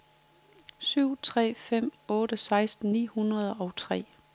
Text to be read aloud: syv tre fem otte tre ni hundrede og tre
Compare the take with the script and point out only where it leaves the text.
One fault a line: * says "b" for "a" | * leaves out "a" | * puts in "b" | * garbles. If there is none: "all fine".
* says "seksten" for "tre"